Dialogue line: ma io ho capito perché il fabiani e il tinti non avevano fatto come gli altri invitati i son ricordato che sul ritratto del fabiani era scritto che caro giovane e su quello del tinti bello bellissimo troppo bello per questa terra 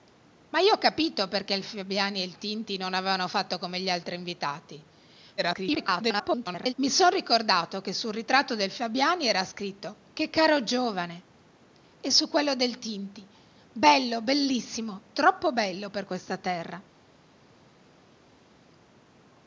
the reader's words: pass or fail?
fail